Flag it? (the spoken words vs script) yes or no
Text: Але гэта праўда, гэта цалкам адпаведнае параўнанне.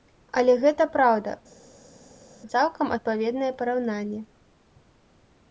yes